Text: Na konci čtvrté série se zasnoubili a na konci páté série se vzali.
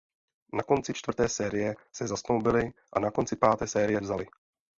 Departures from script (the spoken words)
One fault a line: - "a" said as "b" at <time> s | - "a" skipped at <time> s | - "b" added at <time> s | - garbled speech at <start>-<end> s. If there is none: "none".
- "se" skipped at 4.0 s